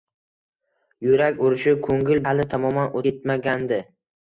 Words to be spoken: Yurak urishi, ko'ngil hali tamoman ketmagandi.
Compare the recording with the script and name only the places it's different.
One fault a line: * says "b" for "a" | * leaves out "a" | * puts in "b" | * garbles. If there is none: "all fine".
all fine